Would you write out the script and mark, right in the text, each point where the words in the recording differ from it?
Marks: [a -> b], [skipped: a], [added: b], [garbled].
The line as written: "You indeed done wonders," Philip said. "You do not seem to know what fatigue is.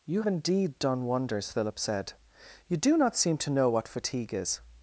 "You indeed done wonders," Philip said. "You do not seem to know what fatigue is.